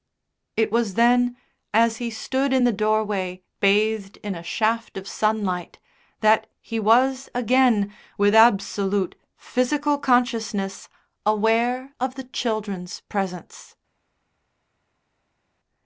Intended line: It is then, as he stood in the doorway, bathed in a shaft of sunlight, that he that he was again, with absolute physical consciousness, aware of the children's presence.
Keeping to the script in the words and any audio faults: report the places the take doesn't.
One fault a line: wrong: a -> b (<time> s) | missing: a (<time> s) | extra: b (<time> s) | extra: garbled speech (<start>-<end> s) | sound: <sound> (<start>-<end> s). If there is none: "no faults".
wrong: is -> was (0.7 s)
missing: that he (6.8 s)